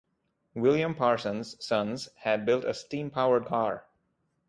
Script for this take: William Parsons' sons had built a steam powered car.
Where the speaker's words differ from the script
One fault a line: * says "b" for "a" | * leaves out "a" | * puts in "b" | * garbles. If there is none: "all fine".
all fine